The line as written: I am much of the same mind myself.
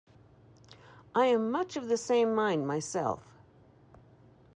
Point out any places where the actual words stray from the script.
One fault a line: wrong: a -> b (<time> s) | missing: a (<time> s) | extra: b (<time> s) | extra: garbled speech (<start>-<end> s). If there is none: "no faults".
no faults